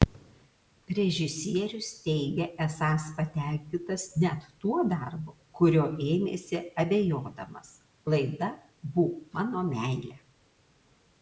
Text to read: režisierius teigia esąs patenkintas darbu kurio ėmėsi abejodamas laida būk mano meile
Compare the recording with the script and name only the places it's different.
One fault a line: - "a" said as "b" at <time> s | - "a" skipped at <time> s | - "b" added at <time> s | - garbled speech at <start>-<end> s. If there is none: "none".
- "net tuo" added at 4.2 s